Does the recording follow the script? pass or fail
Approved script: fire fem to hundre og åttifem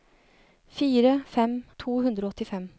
pass